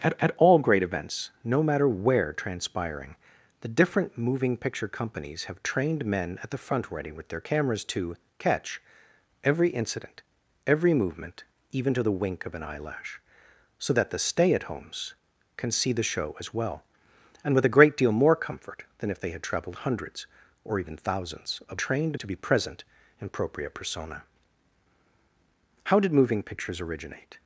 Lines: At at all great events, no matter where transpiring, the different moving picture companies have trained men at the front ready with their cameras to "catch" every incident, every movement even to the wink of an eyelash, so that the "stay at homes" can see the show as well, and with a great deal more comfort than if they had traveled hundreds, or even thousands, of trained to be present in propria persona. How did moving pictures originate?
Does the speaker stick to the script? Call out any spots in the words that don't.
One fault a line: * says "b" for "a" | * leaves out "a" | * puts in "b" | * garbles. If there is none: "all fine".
all fine